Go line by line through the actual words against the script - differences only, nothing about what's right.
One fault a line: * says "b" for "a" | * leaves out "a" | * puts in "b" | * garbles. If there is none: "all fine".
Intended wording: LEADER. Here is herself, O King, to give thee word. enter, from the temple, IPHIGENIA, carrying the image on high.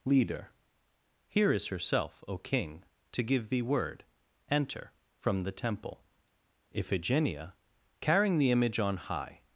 all fine